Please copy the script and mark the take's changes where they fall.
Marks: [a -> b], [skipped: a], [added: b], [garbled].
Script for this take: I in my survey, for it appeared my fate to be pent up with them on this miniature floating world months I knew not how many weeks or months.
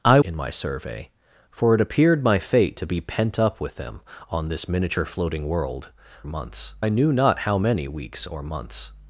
I in my survey, for it appeared my fate to be pent up with them on this miniature floating world months I knew not how many weeks or months.